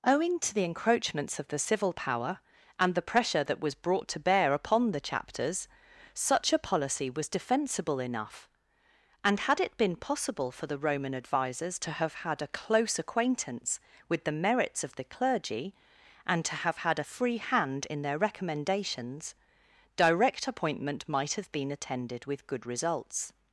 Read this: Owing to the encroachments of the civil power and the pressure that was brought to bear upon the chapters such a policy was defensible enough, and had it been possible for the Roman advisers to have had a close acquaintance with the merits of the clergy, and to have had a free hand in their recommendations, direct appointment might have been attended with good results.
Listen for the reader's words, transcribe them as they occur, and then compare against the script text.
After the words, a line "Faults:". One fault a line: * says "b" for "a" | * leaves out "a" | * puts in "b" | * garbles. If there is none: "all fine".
Owing to the encroachments of the civil power and the pressure that was brought to bear upon the chapters such a policy was defensible enough, and had it been possible for the Roman advisers to have had a close acquaintance with the merits of the clergy, and to have had a free hand in their recommendations, direct appointment might have been attended with good results.
Faults:
all fine